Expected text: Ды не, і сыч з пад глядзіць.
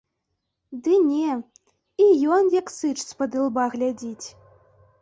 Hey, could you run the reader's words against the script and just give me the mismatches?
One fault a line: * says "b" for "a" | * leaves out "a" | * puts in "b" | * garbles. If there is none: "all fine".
* puts in "ён як"
* puts in "ілба"